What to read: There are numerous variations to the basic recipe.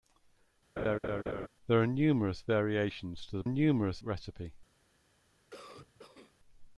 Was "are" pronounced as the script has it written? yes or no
yes